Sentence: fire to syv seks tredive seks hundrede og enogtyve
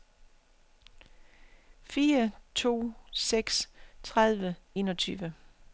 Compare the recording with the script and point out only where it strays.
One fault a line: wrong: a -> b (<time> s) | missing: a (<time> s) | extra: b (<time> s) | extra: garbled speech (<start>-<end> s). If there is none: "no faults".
missing: syv (3.0 s)
missing: seks hundrede og (4.6 s)